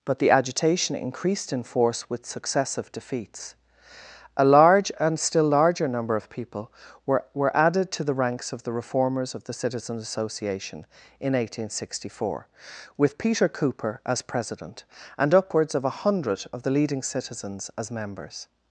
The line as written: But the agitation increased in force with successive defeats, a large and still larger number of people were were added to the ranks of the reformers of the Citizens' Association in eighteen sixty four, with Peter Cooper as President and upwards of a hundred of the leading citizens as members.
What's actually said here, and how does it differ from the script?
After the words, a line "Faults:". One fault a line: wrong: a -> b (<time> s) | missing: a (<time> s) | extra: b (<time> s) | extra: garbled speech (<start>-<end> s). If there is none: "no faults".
But the agitation increased in force with successive defeats, a large and still larger number of people were were added to the ranks of the reformers of the Citizens' Association in eighteen sixty four, with Peter Cooper as President and upwards of a hundred of the leading citizens as members.
Faults:
no faults